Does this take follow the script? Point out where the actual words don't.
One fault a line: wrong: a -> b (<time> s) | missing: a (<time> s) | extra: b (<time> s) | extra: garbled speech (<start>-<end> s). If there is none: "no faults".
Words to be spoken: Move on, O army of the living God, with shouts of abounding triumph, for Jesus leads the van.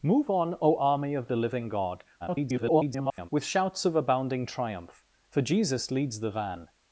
extra: garbled speech (2.2-3.3 s)